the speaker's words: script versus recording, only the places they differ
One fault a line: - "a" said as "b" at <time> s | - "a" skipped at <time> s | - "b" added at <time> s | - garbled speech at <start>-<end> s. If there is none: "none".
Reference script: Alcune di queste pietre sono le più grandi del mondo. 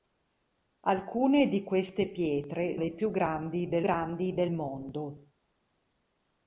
- "sono" skipped at 2.8 s
- "grandi del" added at 3.8 s